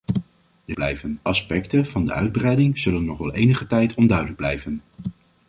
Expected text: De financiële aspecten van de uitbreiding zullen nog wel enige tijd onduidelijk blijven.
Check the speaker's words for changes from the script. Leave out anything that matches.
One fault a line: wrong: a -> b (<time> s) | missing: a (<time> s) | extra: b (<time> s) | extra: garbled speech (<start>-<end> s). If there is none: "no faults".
wrong: financiële -> blijven (0.7 s)